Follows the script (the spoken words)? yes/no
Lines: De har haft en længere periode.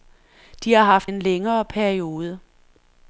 yes